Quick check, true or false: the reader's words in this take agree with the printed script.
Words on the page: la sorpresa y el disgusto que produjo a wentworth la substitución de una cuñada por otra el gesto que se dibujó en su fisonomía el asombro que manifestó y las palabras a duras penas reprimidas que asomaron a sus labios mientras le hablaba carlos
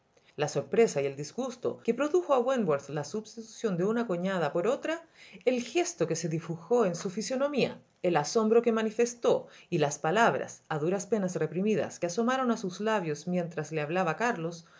true